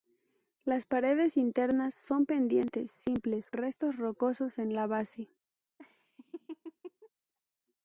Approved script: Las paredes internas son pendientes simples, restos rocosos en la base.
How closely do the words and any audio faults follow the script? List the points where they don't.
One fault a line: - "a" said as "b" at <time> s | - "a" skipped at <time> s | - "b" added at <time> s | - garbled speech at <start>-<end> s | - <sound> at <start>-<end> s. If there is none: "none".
- laugh at 5.8-7.1 s